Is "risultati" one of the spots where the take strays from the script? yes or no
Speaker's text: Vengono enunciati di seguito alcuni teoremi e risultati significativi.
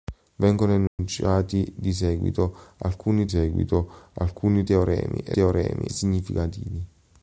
yes